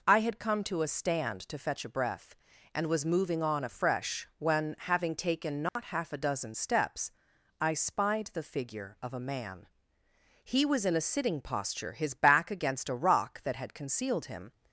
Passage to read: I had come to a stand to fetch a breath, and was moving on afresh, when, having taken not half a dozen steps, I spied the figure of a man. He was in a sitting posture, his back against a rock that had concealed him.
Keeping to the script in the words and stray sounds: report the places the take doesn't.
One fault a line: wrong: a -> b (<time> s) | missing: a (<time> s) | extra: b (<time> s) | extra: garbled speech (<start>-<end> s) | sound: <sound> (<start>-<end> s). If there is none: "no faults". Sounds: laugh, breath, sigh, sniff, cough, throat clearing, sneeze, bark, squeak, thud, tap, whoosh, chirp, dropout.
sound: dropout (5.7-5.8 s)